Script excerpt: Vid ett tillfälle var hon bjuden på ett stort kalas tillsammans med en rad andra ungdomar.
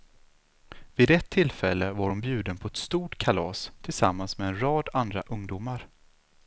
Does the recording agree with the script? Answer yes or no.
yes